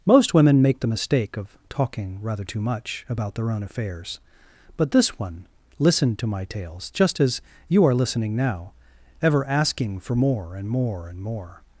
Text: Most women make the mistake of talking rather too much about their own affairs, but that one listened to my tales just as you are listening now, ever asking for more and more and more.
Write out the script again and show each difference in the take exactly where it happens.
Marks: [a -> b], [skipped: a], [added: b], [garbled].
Most women make the mistake of talking rather too much about their own affairs, but [that -> this] one listened to my tales just as you are listening now, ever asking for more and more and more.